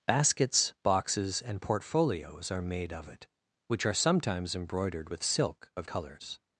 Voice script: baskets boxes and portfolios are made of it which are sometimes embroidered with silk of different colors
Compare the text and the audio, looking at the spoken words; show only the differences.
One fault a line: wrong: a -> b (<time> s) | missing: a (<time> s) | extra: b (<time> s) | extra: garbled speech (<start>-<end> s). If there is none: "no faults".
missing: different (5.9 s)